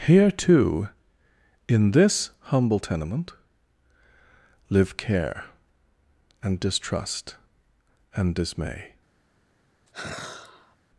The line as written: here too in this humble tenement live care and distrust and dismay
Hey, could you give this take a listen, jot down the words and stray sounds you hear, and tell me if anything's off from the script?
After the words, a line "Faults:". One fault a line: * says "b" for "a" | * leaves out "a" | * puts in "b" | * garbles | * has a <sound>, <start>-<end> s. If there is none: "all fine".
here too in this humble tenement live care and distrust and dismay
Faults:
* has a sigh, 9.9-10.8 s